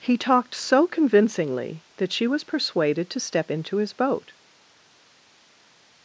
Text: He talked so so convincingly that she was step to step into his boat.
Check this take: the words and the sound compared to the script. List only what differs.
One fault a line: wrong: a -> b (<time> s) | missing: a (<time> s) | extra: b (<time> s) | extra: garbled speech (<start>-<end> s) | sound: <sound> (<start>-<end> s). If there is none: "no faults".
missing: so (0.9 s)
wrong: step -> persuaded (2.5 s)